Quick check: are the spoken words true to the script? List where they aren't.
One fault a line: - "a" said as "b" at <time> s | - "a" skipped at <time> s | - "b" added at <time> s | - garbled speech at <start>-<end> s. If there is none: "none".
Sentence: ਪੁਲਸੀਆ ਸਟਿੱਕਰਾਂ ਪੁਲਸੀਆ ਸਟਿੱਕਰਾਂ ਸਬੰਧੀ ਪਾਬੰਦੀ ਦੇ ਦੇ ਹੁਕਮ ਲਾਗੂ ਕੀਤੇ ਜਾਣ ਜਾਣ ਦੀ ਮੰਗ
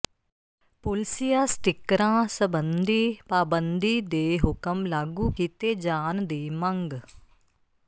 - "ਪੁਲਸੀਆ ਸਟਿੱਕਰਾਂ" skipped at 2.2 s
- "ਦੇ" skipped at 4.4 s
- "ਜਾਣ" skipped at 6.2 s